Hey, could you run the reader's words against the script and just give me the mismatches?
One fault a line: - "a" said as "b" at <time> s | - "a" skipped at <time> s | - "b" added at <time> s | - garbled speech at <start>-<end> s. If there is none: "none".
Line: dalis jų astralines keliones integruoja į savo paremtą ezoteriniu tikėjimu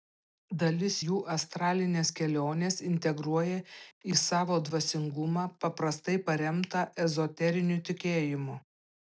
- "dvasingumą paprastai" added at 4.7 s